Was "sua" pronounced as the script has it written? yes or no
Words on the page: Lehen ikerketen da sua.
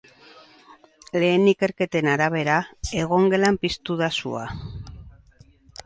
yes